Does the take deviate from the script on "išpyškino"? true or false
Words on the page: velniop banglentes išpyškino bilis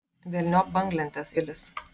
true